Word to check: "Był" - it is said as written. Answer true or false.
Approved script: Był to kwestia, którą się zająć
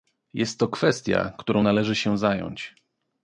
false